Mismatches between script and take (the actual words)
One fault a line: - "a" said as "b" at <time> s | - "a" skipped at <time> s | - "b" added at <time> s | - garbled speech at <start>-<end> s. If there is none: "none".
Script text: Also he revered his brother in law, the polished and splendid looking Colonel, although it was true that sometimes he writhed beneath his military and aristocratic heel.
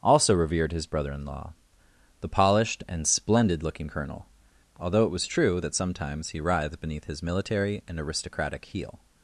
- "he" skipped at 0.3 s